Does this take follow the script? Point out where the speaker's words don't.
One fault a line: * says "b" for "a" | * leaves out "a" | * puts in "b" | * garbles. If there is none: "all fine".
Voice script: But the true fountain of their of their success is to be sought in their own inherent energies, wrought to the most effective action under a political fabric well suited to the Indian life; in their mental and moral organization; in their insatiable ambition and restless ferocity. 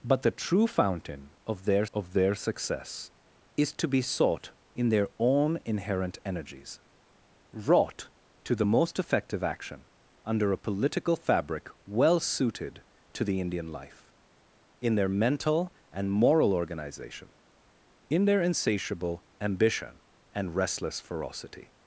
all fine